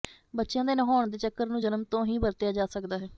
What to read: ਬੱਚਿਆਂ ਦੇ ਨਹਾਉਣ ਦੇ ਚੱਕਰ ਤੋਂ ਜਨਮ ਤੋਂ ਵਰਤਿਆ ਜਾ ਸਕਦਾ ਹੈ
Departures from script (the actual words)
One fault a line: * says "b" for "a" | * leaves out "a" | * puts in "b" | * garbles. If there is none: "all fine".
* says "ਨੂੰ" for "ਤੋਂ"
* puts in "ਹੀ"